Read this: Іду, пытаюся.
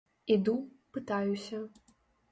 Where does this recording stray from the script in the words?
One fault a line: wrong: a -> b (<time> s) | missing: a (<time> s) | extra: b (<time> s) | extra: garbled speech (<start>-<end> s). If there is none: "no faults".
no faults